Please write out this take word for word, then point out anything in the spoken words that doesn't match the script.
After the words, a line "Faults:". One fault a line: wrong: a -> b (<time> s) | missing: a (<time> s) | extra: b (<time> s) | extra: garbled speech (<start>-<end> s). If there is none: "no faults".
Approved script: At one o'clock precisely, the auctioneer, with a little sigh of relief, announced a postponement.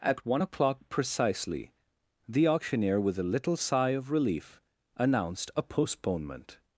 At one o'clock precisely, the auctioneer, with a little sigh of relief, announced a postponement.
Faults:
no faults